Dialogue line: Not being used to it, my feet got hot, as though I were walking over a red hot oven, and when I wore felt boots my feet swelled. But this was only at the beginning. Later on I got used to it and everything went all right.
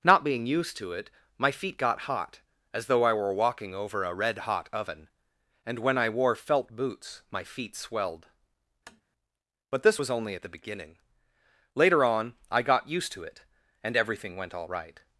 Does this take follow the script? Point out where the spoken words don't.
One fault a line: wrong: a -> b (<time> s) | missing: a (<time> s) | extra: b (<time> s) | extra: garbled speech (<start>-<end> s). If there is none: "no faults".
no faults